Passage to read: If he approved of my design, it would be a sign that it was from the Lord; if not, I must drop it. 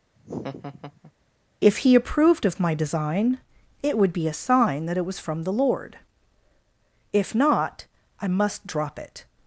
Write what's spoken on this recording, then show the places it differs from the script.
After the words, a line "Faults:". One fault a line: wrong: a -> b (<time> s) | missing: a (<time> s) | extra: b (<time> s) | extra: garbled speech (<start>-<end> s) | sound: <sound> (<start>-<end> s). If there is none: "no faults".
If he approved of my design, it would be a sign that it was from the Lord; if not, I must drop it.
Faults:
sound: laugh (0.2-1.1 s)